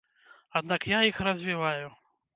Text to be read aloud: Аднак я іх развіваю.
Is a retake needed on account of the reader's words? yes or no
no